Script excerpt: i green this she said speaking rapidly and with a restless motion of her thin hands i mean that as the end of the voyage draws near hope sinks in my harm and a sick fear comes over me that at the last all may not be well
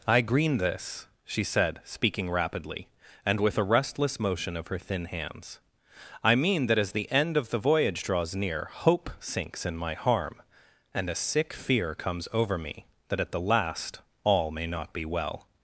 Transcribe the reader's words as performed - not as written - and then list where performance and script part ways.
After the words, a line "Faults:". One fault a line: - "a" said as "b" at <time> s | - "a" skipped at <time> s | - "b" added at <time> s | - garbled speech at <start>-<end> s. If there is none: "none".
i green this she said speaking rapidly and with a restless motion of her thin hands i mean that as the end of the voyage draws near hope sinks in my harm and a sick fear comes over me that at the last all may not be well
Faults:
none